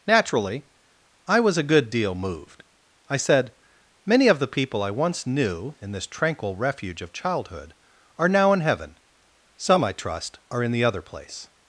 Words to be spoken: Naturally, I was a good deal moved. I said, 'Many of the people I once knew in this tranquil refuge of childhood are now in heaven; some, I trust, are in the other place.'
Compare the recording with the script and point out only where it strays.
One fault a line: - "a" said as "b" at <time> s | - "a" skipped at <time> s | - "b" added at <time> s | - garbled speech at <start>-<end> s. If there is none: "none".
none